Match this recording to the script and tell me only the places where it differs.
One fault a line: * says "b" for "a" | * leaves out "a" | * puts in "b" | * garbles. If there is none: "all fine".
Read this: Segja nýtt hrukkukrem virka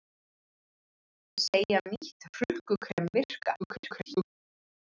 * garbles